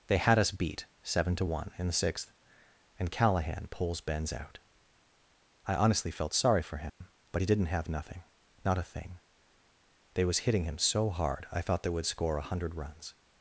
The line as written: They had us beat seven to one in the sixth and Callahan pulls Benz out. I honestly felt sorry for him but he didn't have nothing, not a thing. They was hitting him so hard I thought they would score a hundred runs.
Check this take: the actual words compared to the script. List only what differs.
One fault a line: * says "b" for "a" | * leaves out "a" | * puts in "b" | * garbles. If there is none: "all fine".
all fine